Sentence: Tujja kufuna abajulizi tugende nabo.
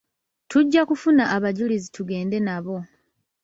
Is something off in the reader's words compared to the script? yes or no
no